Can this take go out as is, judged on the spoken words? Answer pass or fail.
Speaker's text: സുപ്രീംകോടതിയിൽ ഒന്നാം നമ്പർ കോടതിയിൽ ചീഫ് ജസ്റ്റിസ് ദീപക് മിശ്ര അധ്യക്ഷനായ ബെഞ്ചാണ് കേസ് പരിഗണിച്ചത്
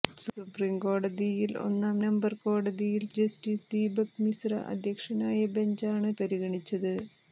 fail